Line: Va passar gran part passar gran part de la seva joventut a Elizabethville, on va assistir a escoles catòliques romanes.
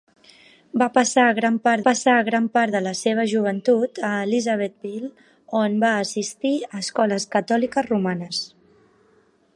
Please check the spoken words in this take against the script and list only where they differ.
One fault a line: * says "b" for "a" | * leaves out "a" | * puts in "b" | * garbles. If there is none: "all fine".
all fine